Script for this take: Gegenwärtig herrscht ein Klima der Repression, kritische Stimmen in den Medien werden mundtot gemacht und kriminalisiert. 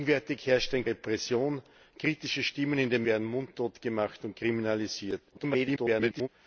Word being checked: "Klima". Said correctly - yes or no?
no